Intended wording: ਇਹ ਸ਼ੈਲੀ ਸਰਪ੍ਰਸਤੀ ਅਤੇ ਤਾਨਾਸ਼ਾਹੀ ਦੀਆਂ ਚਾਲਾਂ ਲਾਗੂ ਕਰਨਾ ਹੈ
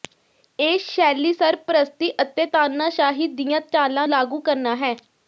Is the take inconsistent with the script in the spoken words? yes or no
no